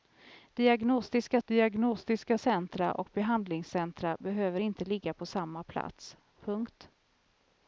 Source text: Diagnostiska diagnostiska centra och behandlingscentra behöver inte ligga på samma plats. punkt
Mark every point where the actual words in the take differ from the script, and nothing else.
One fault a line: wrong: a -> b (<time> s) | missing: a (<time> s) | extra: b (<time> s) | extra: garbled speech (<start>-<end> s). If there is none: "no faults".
no faults